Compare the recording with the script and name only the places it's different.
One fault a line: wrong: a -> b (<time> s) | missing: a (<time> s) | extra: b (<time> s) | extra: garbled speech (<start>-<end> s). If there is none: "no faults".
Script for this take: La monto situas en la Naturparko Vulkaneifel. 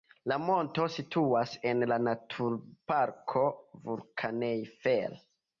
no faults